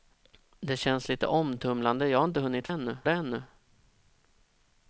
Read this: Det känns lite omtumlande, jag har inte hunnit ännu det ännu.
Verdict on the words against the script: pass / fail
pass